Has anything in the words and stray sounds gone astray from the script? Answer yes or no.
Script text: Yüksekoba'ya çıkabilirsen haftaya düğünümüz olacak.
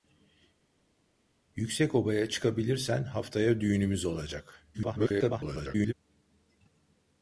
yes